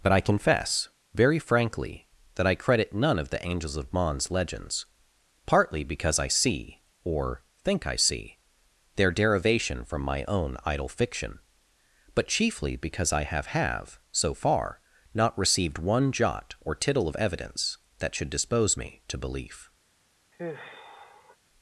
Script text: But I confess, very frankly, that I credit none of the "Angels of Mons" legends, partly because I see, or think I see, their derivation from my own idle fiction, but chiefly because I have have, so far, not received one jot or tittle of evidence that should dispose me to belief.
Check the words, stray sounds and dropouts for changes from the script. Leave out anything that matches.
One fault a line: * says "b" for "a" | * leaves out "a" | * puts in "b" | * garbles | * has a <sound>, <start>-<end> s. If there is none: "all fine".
* has a sigh, 20.3-21.4 s